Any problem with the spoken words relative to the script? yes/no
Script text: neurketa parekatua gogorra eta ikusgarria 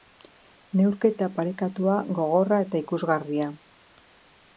no